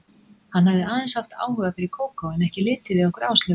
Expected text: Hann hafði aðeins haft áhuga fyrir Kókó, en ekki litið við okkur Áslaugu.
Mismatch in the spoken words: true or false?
false